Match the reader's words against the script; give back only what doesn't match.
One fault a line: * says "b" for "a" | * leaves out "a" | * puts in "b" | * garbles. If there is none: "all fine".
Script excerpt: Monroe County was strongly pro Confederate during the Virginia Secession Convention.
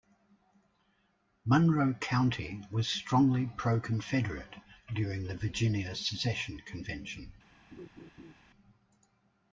all fine